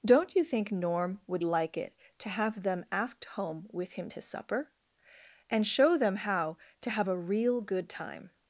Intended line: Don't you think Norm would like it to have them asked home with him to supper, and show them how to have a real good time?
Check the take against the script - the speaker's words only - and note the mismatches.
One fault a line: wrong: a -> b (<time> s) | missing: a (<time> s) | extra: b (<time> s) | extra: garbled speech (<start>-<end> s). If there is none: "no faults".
no faults